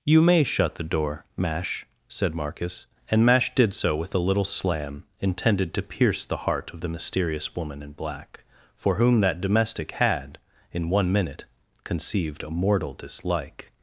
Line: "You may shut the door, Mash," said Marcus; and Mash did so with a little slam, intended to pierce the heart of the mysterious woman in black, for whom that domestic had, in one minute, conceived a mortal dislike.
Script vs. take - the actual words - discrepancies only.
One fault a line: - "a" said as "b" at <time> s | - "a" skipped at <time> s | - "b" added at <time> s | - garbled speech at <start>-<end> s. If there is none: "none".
none